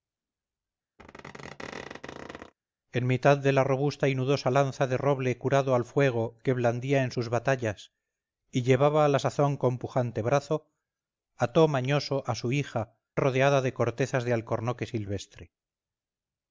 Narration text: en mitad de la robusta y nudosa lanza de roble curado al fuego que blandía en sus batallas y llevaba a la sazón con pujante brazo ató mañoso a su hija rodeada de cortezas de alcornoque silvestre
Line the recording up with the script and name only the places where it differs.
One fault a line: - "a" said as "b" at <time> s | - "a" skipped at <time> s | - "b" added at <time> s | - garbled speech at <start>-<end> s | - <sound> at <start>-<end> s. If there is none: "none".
- squeak at 1.0-2.5 s